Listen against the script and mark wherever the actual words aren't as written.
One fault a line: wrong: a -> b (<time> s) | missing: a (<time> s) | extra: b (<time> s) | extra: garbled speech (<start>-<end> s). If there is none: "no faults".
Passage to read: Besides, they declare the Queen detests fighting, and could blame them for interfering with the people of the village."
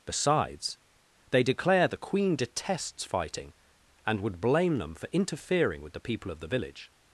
wrong: could -> would (4.2 s)